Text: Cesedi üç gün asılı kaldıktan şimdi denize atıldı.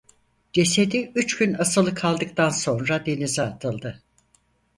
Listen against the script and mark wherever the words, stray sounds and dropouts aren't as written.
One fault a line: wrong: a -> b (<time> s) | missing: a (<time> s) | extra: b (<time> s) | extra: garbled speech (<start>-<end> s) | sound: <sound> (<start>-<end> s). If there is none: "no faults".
wrong: şimdi -> sonra (2.5 s)